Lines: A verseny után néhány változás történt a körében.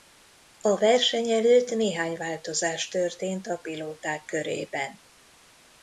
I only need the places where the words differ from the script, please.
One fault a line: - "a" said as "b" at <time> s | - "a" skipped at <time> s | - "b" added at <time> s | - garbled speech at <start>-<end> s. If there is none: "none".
- "után" said as "előtt" at 1.3 s
- "pilóták" added at 3.6 s